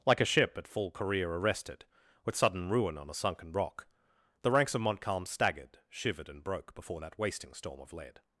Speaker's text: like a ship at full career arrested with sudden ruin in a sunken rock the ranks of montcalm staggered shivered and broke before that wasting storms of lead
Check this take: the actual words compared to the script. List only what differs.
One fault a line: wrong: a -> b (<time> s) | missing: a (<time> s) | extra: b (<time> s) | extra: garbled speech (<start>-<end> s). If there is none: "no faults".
wrong: in -> on (3.0 s)
wrong: storms -> storm (7.5 s)